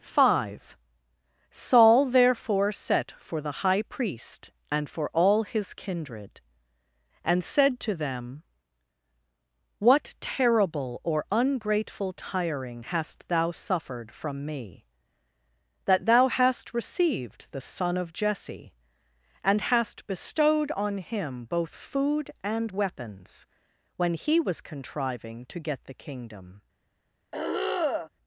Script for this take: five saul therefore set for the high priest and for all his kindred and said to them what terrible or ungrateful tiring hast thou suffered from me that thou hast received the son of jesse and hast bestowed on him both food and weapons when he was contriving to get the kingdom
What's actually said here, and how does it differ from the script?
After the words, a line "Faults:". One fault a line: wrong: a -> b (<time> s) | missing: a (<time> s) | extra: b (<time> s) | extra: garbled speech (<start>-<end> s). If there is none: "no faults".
five saul therefore set for the high priest and for all his kindred and said to them what terrible or ungrateful tiring hast thou suffered from me that thou hast received the son of jesse and hast bestowed on him both food and weapons when he was contriving to get the kingdom
Faults:
no faults